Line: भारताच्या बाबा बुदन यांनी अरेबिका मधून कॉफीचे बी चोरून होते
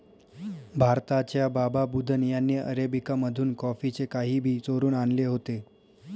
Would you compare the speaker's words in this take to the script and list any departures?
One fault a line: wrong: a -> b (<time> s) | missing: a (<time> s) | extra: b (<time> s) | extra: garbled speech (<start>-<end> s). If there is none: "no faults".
extra: काही (4.1 s)
extra: आणले (4.9 s)